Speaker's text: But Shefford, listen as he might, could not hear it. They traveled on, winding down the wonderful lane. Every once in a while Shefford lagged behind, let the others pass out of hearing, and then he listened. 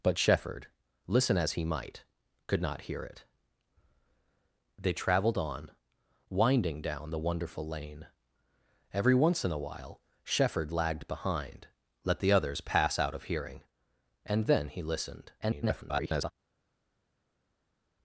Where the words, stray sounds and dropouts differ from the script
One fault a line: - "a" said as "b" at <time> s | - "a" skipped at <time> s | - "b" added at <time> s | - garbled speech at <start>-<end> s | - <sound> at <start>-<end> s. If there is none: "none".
- garbled speech at 15.4-16.3 s